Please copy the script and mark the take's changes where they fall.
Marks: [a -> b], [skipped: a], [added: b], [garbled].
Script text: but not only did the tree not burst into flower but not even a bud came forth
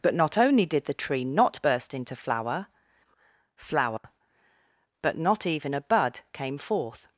but not only did the tree not burst into flower [added: flower] but not even a bud came forth